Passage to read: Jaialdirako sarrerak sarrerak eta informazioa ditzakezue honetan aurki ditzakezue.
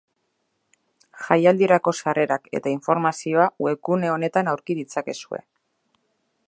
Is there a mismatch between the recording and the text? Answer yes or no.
yes